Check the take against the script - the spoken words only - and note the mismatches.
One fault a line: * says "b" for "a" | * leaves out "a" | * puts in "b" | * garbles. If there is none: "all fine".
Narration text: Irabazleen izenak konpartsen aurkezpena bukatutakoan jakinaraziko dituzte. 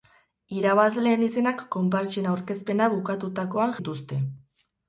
* leaves out "jakinaraziko"